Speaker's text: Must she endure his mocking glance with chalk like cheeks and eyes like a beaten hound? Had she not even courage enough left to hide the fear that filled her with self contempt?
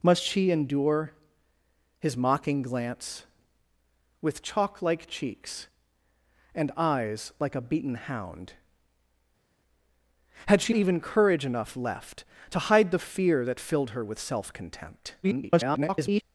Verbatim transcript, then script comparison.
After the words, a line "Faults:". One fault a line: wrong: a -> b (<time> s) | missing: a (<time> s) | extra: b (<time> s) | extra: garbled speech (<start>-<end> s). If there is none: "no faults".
Must she endure his mocking glance with chalk like cheeks and eyes like a beaten hound? Had she even courage enough left to hide the fear that filled her with self contempt? [garbled]
Faults:
missing: not (10.7 s)
extra: garbled speech (15.2-16.2 s)